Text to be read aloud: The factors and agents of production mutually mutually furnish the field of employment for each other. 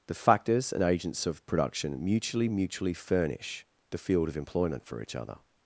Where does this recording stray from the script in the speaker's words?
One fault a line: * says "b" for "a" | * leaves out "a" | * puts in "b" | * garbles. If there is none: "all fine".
all fine